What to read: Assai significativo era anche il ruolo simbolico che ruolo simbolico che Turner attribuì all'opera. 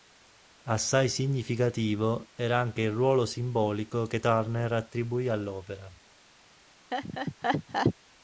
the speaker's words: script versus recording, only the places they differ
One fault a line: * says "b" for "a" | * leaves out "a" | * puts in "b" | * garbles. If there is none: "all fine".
* leaves out "ruolo simbolico che"